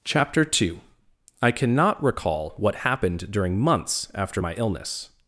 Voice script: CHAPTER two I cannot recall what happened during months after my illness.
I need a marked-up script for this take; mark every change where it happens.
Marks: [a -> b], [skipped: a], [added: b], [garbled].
CHAPTER two I cannot recall what happened during months after my illness.